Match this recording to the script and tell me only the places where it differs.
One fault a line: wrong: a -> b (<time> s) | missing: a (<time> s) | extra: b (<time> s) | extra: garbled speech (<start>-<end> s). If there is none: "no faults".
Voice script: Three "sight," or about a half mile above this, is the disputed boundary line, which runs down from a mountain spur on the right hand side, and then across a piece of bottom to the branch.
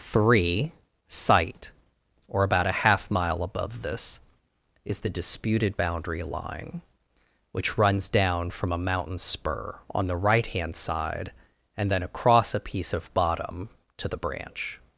no faults